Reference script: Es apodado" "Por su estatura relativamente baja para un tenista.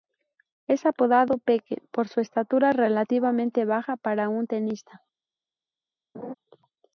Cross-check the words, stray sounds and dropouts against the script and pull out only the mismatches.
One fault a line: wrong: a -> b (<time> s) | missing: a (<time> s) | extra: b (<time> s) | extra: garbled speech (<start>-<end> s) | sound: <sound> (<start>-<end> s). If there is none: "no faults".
extra: Peque (1.4 s)
sound: laugh (6.1-6.3 s)